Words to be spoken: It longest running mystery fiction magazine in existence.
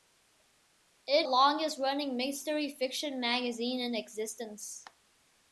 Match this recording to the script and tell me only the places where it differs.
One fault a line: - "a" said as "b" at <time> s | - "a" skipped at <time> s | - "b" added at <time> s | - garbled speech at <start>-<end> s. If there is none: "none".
none